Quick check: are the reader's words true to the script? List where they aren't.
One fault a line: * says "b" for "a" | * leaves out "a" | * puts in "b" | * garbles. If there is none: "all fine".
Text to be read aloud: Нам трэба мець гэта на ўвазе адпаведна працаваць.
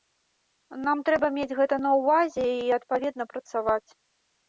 * puts in "і"